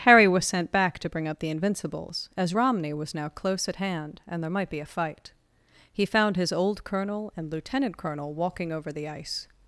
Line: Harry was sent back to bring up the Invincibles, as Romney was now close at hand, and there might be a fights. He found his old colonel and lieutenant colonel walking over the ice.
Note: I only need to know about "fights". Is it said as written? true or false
false